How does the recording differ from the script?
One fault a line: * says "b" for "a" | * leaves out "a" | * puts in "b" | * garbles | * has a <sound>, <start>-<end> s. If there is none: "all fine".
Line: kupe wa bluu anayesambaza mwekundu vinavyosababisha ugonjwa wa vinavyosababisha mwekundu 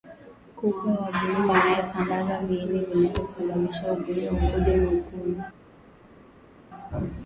* says "viini" for "mwekundu"
* says "mkojo" for "vinavyosababisha"